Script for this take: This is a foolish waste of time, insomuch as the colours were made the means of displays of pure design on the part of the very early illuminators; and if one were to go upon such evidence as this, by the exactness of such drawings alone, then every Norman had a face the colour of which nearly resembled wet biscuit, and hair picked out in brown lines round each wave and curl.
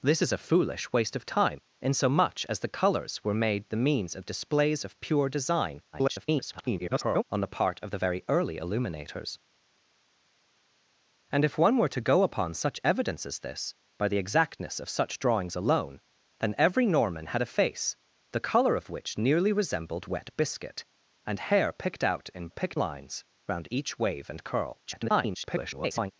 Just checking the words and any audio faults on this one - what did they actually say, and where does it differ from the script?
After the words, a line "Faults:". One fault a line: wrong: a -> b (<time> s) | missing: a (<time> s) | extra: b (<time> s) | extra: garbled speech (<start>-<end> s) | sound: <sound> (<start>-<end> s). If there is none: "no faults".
This is a foolish waste of time, insomuch as the colours were made the means of displays of pure design [garbled] on the part of the very early illuminators; and if one were to go upon such evidence as this, by the exactness of such drawings alone, then every Norman had a face the colour of which nearly resembled wet biscuit, and hair picked out in picked lines round each wave and curl. [garbled]
Faults:
extra: garbled speech (5.9-7.2 s)
wrong: brown -> picked (22.5 s)
extra: garbled speech (24.9-26.1 s)